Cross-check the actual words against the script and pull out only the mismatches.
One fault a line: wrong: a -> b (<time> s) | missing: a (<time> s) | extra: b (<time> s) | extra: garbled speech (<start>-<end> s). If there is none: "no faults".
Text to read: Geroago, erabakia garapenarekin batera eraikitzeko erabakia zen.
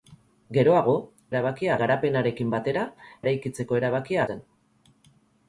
no faults